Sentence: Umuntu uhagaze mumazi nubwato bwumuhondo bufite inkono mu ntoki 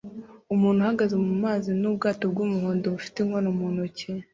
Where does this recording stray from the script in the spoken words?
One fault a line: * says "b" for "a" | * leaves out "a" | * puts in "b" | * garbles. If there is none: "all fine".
all fine